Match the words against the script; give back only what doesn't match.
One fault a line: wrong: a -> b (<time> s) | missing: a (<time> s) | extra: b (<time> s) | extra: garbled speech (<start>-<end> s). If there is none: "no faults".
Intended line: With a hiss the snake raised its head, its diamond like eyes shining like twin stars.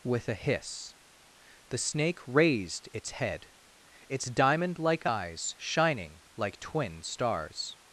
no faults